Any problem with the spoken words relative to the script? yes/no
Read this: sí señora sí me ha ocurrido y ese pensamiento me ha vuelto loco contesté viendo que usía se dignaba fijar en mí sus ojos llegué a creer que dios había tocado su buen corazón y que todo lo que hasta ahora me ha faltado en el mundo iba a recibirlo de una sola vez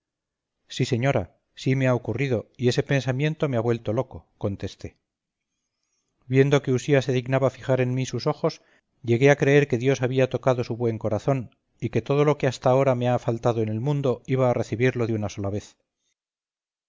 no